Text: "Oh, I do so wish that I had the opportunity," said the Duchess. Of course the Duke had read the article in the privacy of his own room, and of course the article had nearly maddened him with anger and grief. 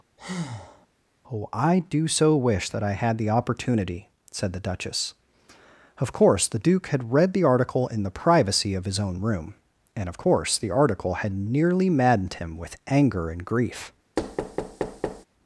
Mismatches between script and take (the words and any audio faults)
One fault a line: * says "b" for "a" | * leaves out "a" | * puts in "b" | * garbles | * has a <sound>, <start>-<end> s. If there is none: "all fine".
* has a breath, 0.2-0.9 s
* has a thud, 14.2-15.2 s